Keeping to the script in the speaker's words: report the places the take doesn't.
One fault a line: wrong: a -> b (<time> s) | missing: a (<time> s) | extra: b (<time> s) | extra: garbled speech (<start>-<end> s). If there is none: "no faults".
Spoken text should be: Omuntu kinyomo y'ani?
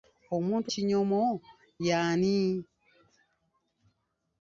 no faults